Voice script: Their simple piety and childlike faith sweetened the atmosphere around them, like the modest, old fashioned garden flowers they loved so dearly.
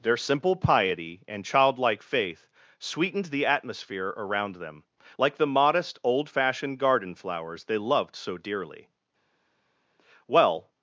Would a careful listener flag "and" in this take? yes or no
no